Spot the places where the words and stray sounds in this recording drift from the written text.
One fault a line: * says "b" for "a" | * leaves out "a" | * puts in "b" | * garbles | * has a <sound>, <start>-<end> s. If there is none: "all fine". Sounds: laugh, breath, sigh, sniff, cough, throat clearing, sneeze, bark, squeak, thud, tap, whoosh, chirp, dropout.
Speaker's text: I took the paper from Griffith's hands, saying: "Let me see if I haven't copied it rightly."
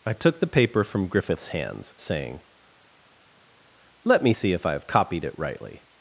* says "have" for "haven't"